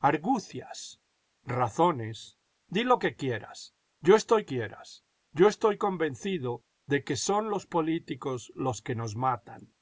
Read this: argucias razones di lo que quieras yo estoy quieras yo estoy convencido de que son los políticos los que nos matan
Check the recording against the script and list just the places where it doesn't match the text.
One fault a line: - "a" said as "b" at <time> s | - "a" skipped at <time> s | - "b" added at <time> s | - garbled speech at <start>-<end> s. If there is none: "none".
none